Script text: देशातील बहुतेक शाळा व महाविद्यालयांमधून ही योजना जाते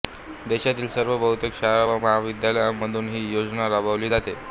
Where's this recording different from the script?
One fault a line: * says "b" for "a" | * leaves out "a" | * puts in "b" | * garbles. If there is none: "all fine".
* puts in "सर्व"
* puts in "राबवली"